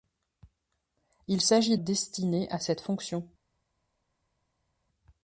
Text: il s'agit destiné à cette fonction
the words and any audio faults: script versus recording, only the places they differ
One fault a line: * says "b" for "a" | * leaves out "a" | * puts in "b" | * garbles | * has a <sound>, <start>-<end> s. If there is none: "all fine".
all fine